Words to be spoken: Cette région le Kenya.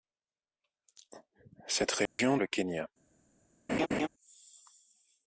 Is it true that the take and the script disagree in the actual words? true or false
false